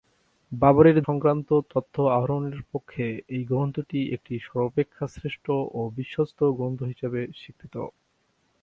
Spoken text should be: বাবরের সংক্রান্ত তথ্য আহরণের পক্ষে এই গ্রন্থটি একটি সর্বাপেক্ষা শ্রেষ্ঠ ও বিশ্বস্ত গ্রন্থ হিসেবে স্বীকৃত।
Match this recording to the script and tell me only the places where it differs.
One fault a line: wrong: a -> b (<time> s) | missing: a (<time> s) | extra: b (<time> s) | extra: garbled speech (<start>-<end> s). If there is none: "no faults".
no faults